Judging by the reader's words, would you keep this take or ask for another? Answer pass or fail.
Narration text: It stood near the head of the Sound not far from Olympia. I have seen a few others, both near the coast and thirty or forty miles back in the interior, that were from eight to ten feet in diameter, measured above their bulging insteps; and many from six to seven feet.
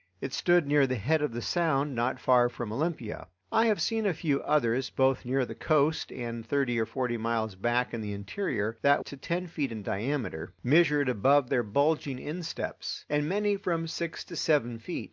fail